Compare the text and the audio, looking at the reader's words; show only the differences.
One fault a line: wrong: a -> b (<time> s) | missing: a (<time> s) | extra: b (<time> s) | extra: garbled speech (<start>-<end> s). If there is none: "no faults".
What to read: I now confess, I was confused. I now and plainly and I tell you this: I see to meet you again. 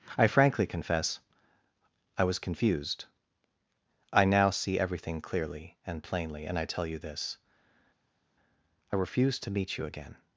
wrong: now -> frankly (0.3 s)
extra: see everything clearly (4.5 s)
wrong: see -> refuse (8.9 s)